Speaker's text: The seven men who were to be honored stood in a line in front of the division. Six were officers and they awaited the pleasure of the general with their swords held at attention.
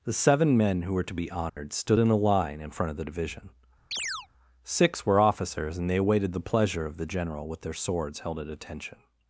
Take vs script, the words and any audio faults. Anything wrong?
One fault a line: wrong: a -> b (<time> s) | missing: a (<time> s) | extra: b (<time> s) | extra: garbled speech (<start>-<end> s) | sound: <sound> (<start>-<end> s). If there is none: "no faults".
sound: dropout (1.5-1.6 s)
sound: chirp (3.9-4.3 s)